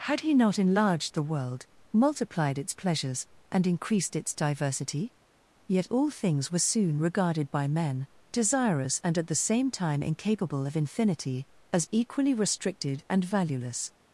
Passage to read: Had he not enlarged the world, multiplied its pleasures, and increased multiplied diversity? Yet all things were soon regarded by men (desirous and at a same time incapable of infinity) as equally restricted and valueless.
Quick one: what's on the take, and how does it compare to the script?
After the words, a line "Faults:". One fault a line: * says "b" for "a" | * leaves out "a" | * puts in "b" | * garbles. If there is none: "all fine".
Had he not enlarged the world, multiplied its pleasures, and increased its diversity? Yet all things were soon regarded by men (desirous and at the same time incapable of infinity) as equally restricted and valueless.
Faults:
* says "its" for "multiplied"
* says "the" for "a"